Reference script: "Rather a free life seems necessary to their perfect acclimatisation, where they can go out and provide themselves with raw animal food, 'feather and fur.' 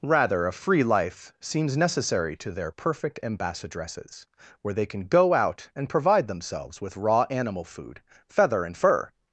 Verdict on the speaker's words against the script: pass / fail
fail